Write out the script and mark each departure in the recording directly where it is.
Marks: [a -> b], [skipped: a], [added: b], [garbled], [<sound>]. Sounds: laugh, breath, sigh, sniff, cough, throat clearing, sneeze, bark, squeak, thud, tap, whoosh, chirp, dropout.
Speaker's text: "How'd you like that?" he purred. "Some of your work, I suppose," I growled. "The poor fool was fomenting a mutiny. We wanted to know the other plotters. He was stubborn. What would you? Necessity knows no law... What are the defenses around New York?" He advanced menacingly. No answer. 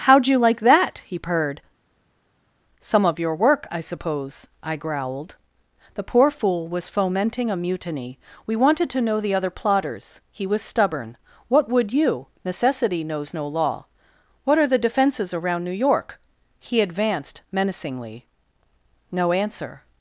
"How'd you like that?" he purred. "Some of your work, I suppose," I growled. "The poor fool was fomenting a mutiny. We wanted to know the other plotters. He was stubborn. What would you? Necessity knows no law... What are the defenses around New York?" He advanced menacingly. No answer.